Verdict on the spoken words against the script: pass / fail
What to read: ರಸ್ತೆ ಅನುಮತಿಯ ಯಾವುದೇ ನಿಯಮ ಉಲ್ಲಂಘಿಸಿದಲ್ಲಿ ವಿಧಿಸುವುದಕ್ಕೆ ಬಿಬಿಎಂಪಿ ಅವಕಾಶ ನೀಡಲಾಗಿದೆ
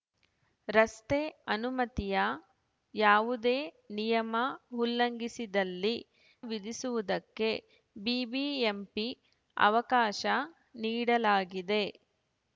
pass